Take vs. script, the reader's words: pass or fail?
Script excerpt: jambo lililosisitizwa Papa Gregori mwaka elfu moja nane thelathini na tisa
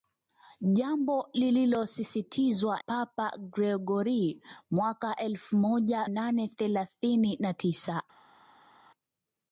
pass